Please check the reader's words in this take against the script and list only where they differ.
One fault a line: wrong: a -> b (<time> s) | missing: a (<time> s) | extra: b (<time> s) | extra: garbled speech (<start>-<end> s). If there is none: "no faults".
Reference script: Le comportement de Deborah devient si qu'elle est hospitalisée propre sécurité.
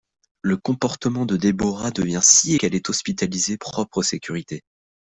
no faults